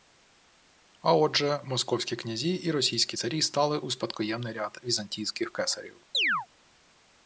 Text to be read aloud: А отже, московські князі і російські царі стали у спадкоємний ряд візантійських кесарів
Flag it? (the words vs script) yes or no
no